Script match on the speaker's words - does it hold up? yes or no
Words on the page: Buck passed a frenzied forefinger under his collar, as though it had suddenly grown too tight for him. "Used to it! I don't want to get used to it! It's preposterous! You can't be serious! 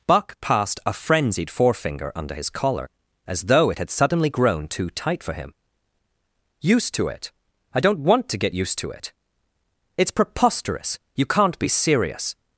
yes